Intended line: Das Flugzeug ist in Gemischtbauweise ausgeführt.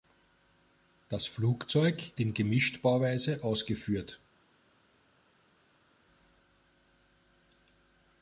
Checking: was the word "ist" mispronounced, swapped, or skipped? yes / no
yes